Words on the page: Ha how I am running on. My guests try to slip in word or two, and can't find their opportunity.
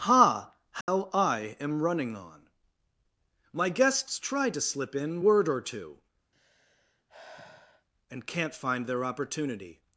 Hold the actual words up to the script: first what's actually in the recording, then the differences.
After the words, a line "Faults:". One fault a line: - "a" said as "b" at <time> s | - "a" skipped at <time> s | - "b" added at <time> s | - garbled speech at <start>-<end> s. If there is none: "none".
Ha how I am running on. My guests try to slip in word or two, and can't find their opportunity.
Faults:
none